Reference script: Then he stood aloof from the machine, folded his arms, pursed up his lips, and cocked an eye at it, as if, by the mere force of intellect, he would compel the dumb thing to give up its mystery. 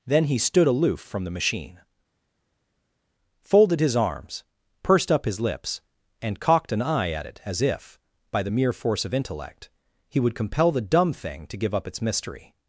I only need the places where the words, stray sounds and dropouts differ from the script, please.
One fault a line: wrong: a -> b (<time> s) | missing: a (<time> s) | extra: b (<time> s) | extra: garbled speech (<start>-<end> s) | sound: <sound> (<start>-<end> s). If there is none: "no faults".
no faults